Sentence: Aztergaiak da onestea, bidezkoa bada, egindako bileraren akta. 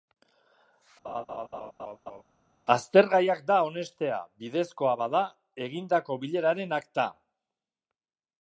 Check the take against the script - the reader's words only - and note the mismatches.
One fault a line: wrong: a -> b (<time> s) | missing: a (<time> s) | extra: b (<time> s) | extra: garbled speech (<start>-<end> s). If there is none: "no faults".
no faults